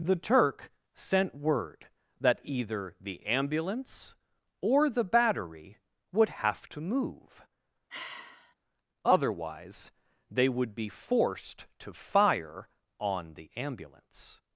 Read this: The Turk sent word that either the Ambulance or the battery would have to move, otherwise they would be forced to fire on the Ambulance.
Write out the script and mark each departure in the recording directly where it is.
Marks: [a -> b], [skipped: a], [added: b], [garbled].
The Turk sent word that either the Ambulance or the battery would have to move, otherwise they would be forced to fire on the Ambulance.